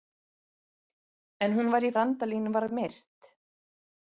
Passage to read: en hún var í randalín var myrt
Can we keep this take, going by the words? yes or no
yes